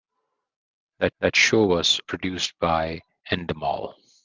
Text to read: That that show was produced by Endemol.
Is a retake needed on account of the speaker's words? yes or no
no